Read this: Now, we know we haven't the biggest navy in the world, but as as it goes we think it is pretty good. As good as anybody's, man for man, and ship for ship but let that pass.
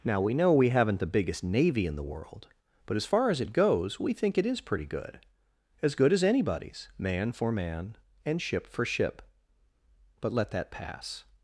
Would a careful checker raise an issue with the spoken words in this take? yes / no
yes